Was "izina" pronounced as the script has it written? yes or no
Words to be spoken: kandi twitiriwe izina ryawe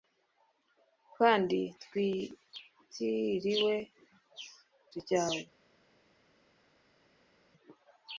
no